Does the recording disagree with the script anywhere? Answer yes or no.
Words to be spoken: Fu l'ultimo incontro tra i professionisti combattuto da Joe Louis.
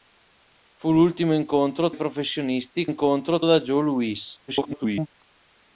yes